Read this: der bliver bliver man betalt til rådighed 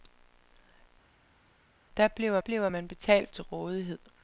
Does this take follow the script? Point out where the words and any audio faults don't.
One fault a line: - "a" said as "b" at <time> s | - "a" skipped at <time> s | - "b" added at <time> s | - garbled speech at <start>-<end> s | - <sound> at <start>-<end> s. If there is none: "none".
none